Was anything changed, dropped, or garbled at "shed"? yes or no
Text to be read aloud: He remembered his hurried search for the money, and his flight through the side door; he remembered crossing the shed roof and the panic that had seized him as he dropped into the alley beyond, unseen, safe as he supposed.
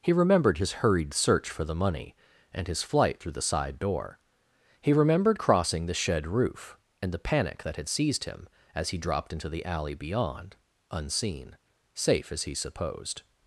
no